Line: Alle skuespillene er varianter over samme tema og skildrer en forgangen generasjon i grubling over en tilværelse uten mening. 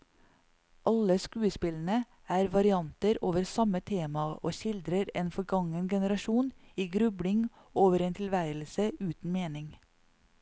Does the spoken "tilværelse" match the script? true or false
true